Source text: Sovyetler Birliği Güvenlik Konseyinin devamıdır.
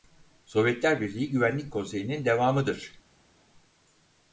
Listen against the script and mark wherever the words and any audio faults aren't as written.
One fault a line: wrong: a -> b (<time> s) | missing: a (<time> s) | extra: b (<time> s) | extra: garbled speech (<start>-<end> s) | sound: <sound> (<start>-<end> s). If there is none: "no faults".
no faults